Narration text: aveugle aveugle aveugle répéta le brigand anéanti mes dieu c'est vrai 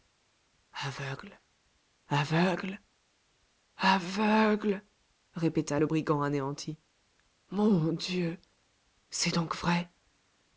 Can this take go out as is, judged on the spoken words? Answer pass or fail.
fail